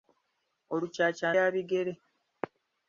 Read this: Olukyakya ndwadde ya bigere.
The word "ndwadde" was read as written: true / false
false